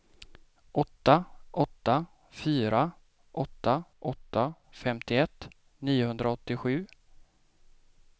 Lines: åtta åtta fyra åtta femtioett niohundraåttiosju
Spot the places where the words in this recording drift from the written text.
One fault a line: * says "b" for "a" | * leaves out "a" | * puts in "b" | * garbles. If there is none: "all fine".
* puts in "åtta"